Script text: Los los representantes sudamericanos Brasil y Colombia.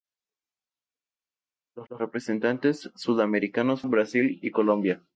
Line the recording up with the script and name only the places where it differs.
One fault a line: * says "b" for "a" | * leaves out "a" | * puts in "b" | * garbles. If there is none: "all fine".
all fine